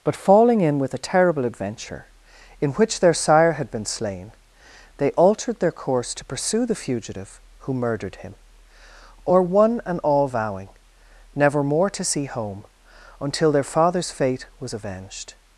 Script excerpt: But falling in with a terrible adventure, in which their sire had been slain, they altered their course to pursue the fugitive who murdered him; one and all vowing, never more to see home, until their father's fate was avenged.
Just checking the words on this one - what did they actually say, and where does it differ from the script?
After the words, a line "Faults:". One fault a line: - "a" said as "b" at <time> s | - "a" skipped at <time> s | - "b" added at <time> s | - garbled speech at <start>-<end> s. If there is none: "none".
But falling in with a terrible adventure, in which their sire had been slain, they altered their course to pursue the fugitive who murdered him; or one and all vowing, never more to see home, until their father's fate was avenged.
Faults:
- "or" added at 9.2 s